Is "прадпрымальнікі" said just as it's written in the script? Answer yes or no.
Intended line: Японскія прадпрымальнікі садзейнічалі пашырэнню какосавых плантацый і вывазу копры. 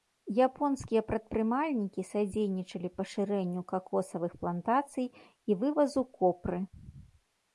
yes